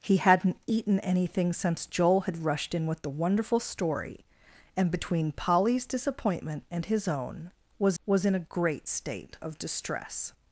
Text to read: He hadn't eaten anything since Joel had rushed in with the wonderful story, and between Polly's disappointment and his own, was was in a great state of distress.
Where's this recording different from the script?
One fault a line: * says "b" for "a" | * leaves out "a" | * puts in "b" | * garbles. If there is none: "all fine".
all fine